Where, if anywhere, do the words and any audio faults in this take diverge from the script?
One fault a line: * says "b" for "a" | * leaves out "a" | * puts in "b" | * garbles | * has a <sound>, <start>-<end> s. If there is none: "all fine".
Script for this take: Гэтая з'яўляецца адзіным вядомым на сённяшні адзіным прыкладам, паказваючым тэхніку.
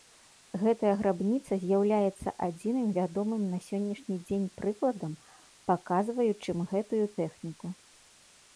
* puts in "грабніца"
* says "дзень" for "адзіным"
* puts in "гэтую"